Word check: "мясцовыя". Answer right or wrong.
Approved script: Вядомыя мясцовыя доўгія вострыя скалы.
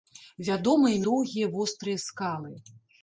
wrong